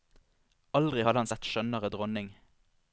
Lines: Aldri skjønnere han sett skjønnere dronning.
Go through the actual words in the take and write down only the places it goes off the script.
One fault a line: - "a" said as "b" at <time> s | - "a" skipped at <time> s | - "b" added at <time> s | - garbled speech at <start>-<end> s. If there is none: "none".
- "skjønnere" said as "hadde" at 1.0 s